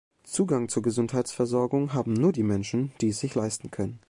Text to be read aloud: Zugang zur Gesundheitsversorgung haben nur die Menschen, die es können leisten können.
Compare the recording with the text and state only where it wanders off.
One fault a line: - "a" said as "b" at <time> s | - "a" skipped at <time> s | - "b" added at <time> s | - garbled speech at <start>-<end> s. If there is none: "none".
- "können" said as "sich" at 3.2 s